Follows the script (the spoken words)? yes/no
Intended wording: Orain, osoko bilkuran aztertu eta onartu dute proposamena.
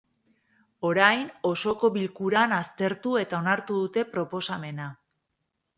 yes